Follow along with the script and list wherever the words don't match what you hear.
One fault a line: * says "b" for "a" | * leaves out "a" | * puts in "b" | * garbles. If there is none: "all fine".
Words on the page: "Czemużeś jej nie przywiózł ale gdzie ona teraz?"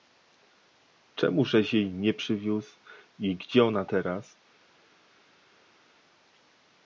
* says "i" for "ale"